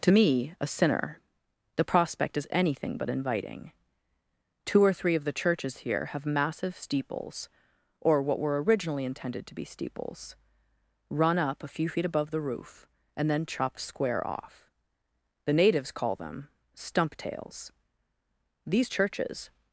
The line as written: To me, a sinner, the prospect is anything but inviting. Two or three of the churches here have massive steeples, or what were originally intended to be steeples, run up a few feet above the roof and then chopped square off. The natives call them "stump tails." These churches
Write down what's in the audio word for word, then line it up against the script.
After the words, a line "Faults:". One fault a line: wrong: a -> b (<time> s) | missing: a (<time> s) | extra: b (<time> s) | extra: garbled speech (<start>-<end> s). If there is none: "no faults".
To me, a sinner, the prospect is anything but inviting. Two or three of the churches here have massive steeples, or what were originally intended to be steeples, run up a few feet above the roof and then chopped square off. The natives call them "stump tails." These churches
Faults:
no faults